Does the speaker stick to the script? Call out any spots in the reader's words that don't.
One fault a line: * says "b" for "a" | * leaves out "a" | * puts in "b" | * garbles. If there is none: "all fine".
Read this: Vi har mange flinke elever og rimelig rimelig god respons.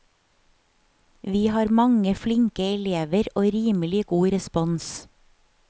* leaves out "rimelig"